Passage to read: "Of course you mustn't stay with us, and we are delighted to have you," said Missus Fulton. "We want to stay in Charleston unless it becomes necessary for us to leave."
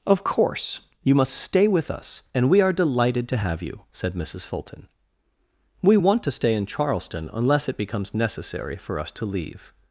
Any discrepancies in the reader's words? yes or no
yes